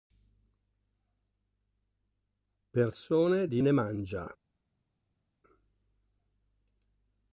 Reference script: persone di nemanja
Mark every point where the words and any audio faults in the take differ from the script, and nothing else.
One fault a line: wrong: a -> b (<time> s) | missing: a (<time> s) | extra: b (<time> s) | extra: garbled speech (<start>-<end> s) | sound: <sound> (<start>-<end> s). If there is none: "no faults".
no faults